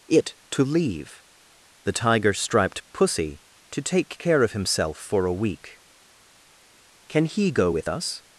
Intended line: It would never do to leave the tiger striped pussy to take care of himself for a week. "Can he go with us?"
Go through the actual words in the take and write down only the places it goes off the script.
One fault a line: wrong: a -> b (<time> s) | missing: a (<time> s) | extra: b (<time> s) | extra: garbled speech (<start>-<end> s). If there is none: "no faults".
missing: would never do (0.3 s)